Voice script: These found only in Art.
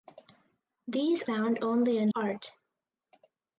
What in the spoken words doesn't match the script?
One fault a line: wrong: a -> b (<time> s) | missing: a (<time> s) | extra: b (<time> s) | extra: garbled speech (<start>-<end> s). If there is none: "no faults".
no faults